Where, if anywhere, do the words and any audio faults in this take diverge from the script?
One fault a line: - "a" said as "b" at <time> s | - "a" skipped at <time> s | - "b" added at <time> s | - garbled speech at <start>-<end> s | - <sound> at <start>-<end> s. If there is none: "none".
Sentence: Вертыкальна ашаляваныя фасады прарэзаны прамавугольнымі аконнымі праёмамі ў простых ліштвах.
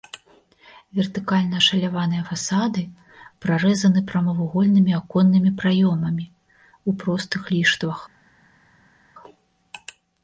none